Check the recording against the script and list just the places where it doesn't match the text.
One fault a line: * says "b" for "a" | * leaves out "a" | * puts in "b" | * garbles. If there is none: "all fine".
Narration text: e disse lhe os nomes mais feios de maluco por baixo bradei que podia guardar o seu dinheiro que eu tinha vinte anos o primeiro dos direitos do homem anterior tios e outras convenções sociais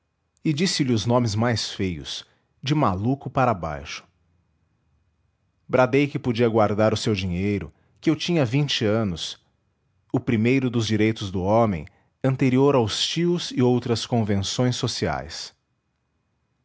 * says "para" for "por"
* puts in "aos"